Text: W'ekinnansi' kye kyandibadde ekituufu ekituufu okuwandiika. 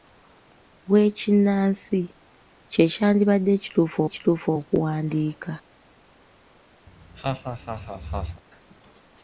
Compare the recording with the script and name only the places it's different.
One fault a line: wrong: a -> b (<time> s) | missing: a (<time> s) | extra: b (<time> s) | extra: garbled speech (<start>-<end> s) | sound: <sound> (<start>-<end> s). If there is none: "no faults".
sound: laugh (6.9-8.4 s)